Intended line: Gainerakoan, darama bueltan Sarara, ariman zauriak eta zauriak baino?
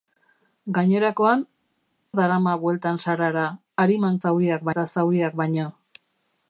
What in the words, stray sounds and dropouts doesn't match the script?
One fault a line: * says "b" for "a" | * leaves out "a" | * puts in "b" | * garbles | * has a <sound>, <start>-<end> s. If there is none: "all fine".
all fine